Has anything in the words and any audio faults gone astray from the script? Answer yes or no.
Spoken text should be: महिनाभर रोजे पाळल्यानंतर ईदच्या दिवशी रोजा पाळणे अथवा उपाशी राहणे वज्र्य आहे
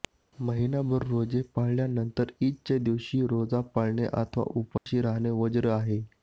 yes